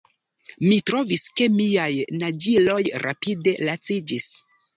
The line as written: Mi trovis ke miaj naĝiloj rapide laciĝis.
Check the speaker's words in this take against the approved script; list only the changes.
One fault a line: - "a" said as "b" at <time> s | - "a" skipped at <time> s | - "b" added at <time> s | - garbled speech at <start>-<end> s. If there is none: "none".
none